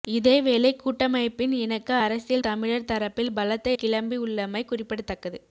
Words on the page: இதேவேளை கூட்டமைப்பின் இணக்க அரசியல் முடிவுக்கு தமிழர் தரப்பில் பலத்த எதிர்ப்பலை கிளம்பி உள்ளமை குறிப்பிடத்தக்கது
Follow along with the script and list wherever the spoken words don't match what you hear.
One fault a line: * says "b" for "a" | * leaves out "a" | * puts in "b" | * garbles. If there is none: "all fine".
* leaves out "முடிவுக்கு"
* leaves out "எதிர்ப்பலை"